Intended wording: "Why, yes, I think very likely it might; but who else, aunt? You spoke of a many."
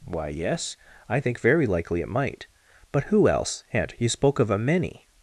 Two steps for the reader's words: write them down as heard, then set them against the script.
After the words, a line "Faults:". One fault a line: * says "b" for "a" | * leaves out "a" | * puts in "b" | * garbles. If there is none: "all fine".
"Why, yes, I think very likely it might; but who else, aunt? You spoke of a many."
Faults:
all fine